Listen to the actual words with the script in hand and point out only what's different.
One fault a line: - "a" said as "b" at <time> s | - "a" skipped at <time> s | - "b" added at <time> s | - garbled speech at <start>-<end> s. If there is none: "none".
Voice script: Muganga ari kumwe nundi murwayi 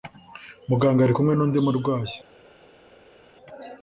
none